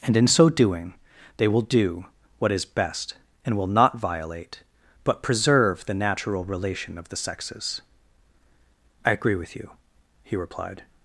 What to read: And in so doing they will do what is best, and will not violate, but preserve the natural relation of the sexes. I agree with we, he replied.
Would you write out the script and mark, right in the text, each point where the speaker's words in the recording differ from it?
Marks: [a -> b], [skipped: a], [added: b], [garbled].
And in so doing they will do what is best, and will not violate, but preserve the natural relation of the sexes. I agree with [we, -> you] he replied.